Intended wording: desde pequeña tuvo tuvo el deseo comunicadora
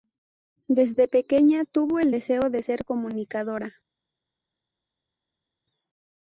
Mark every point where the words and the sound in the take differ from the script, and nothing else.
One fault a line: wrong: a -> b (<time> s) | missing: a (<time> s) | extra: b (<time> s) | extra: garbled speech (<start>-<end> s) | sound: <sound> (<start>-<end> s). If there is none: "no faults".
missing: tuvo (2.0 s)
extra: de ser (2.5 s)